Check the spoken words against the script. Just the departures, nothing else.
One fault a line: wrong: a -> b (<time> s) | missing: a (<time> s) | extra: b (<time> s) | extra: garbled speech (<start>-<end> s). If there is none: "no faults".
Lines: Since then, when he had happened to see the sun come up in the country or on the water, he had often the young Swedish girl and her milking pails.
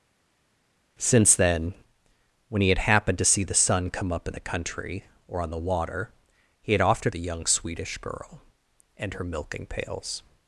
no faults